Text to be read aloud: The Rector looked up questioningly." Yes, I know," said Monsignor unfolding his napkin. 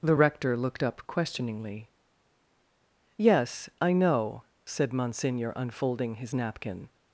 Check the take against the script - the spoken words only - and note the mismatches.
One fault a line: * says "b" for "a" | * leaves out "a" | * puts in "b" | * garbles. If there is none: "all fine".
all fine